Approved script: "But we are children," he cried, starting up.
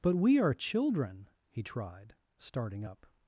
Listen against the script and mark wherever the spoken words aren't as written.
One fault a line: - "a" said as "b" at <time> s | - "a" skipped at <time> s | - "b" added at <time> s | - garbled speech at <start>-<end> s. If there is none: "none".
- "cried" said as "tried" at 1.6 s